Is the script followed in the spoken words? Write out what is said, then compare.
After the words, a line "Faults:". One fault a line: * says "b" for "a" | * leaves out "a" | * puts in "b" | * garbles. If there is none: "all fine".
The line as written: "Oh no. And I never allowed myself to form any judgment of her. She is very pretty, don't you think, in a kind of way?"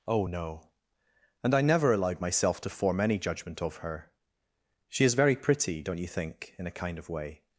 "Oh no. And I never allowed myself to form any judgment of her. She is very pretty, don't you think, in a kind of way?"
Faults:
all fine